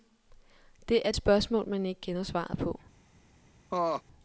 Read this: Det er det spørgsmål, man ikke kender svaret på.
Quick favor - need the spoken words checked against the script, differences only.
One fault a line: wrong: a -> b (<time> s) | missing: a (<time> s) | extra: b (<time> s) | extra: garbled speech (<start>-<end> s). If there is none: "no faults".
missing: det (1.1 s)